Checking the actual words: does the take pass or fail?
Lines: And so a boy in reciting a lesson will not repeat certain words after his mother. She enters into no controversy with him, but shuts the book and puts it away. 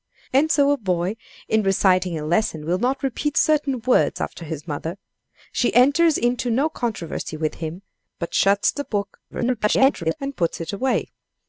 fail